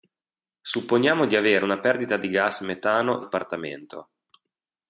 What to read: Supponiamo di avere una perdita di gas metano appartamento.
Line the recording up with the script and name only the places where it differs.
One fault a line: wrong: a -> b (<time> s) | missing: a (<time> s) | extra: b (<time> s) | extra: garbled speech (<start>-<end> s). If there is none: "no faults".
no faults